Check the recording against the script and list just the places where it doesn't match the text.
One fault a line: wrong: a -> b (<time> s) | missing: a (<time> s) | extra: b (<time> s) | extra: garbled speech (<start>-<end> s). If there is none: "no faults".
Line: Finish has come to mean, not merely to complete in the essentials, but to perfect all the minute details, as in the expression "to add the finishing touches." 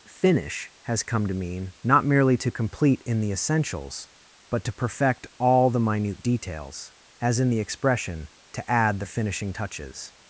no faults